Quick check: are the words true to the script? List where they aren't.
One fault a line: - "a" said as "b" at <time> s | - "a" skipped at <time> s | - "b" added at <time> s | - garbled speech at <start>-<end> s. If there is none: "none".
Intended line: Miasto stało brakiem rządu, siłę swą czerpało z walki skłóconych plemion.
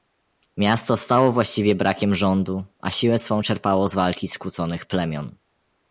- "właściwie" added at 1.3 s
- "a" added at 2.8 s